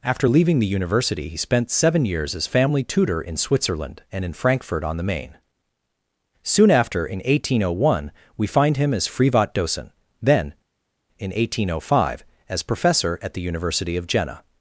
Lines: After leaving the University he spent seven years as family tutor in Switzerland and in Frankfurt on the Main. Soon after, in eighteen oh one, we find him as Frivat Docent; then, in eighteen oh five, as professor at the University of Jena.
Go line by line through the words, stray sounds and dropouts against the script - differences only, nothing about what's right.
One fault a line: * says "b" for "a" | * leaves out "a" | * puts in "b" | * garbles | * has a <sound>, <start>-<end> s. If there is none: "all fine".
all fine